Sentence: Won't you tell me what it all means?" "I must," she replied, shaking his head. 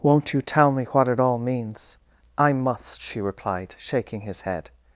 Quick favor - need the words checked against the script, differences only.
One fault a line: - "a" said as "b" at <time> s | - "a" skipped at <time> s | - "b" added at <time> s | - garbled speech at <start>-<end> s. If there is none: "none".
none